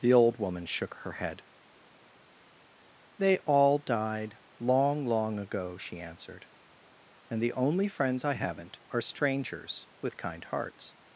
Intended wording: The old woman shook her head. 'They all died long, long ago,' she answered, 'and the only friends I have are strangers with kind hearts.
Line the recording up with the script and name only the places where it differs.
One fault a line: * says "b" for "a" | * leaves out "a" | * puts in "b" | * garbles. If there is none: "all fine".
* says "haven't" for "have"